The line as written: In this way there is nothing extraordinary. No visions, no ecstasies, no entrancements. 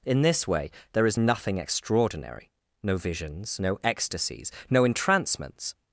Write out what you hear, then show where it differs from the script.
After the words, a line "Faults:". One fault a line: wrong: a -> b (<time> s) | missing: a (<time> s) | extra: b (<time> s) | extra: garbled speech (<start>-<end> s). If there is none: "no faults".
In this way there is nothing extraordinary. No visions, no ecstasies, no entrancements.
Faults:
no faults